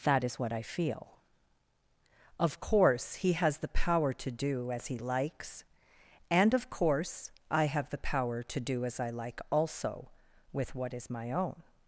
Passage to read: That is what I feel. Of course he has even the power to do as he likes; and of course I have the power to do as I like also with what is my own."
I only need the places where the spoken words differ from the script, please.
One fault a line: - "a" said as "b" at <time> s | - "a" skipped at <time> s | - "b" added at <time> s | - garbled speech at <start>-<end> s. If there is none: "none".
- "even" skipped at 3.6 s